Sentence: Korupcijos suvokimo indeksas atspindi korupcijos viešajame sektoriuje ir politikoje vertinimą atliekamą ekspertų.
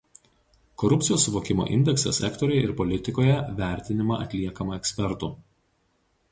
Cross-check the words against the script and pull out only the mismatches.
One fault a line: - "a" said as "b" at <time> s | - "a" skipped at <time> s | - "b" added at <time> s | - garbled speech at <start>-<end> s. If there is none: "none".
- "atspindi korupcijos viešajame" skipped at 2.2 s